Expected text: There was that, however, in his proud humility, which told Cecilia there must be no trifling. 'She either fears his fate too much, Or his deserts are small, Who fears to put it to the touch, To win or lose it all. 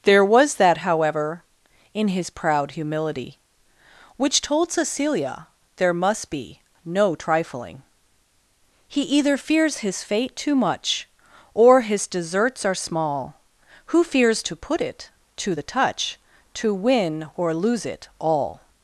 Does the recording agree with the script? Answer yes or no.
no